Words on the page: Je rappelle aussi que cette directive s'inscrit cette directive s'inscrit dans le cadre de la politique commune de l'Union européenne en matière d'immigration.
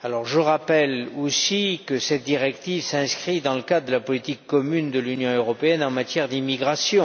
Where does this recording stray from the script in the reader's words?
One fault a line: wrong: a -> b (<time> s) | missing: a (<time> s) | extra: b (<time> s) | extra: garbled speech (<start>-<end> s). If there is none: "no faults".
missing: cette directive s'inscrit (3.4 s)